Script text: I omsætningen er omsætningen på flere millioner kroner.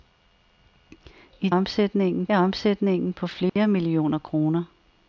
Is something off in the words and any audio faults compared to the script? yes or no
yes